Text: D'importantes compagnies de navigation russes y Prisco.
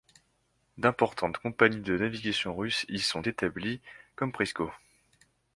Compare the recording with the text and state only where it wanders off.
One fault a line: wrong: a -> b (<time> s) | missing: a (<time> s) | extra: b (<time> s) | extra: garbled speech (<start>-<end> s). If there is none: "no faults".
extra: sont établies comme (3.0 s)